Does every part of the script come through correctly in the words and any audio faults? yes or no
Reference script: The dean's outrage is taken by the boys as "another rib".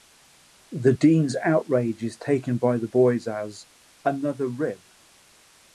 yes